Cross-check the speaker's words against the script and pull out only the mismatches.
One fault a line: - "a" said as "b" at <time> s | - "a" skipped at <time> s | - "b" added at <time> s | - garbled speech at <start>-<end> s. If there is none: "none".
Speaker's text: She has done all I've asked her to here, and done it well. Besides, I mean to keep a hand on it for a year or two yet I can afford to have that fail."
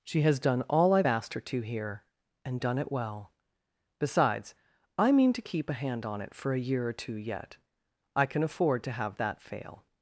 none